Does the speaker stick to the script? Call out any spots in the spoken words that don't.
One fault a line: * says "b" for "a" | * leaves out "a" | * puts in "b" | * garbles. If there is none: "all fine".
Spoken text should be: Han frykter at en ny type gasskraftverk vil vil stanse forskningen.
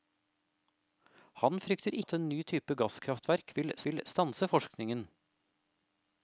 all fine